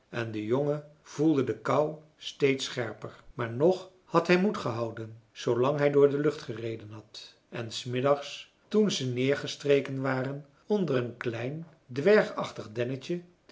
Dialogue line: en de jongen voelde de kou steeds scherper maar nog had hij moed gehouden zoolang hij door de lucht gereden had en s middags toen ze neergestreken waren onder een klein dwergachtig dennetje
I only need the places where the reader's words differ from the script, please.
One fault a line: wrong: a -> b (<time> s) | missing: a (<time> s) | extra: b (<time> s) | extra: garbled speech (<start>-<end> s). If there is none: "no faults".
no faults